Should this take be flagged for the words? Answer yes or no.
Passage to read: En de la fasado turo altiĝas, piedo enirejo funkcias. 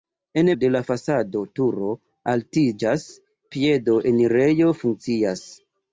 no